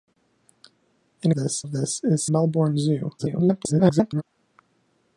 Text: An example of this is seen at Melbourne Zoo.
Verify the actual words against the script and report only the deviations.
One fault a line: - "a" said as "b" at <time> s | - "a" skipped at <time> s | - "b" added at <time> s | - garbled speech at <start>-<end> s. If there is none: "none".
- "example" said as "this" at 1.3 s
- "seen at" skipped at 2.3 s
- garbled speech at 3.2-4.2 s